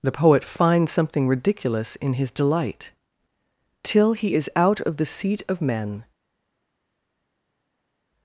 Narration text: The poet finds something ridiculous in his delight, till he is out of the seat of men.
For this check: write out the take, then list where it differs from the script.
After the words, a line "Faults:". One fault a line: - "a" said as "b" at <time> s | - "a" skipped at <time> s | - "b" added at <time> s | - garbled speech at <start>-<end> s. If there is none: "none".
The poet finds something ridiculous in his delight, till he is out of the seat of men.
Faults:
none